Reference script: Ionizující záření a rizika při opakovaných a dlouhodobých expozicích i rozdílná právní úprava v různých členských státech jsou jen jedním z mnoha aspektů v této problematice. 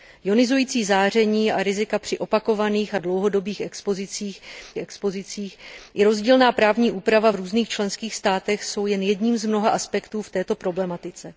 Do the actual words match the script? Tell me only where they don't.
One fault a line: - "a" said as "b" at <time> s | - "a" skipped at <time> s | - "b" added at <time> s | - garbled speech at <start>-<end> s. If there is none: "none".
- "expozicích" added at 4.8 s